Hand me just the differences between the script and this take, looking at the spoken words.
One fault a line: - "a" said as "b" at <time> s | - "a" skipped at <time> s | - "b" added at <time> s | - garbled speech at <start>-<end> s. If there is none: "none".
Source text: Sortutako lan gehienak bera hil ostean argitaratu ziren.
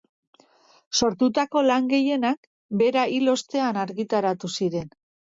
none